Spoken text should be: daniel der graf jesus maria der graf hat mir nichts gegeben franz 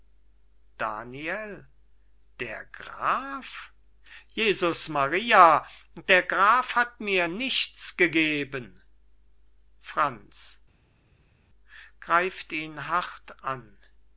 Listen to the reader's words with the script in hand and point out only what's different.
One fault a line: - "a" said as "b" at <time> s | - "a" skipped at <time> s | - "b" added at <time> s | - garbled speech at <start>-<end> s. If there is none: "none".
none